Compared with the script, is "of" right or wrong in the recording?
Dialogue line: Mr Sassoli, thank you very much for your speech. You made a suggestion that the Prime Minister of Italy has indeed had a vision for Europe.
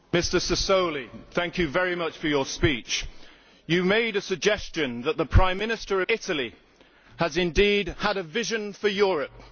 wrong